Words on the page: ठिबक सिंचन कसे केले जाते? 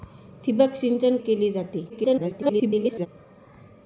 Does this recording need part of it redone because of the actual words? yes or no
yes